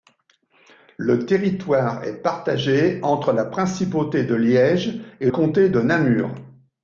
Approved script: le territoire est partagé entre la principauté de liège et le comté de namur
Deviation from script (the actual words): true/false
true